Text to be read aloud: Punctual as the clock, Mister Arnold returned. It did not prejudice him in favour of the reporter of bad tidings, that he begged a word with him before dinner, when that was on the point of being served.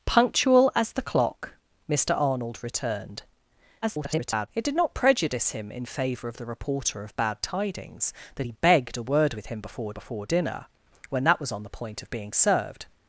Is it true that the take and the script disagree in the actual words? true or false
true